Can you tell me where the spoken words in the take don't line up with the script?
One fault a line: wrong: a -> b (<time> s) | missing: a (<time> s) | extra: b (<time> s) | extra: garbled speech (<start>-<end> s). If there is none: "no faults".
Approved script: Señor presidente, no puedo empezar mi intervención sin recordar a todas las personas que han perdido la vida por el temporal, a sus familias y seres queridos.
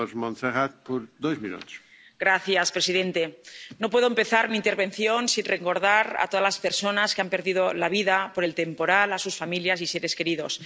no faults